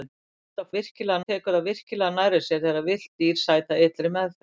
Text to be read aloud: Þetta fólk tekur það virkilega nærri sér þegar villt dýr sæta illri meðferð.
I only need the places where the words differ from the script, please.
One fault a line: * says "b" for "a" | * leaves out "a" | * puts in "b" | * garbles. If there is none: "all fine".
* says "virkilega" for "fólk"